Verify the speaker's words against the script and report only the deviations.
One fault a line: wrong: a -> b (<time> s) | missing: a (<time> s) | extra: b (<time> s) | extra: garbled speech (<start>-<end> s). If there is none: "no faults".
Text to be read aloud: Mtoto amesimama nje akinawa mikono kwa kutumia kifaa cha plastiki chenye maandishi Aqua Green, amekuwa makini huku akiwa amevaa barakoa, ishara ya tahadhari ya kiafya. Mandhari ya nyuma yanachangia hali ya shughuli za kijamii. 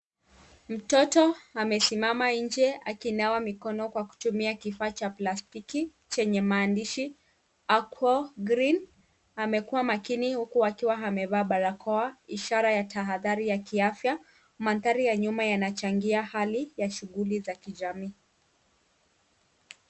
no faults